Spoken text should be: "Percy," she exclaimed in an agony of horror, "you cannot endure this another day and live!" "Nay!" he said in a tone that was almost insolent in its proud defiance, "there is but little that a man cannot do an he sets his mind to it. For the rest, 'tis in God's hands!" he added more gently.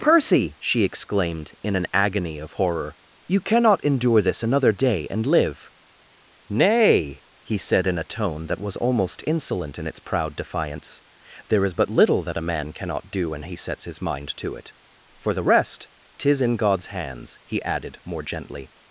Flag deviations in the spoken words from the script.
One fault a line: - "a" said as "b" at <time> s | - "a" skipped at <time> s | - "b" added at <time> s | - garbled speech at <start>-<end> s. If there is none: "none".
- "an" said as "when" at 13.3 s